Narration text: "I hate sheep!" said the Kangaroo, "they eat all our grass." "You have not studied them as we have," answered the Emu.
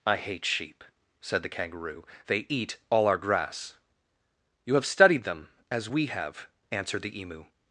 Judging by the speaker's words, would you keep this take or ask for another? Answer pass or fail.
fail